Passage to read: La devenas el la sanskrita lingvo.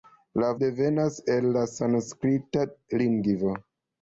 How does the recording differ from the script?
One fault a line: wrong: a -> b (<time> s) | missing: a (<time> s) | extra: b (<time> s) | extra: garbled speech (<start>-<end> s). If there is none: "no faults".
no faults